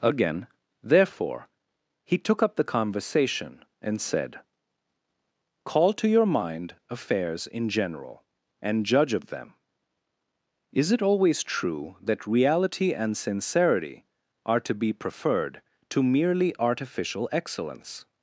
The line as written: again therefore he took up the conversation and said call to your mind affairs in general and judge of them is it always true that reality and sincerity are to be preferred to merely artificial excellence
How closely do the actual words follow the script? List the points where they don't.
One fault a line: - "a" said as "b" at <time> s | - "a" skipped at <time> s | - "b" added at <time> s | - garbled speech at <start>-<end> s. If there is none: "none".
none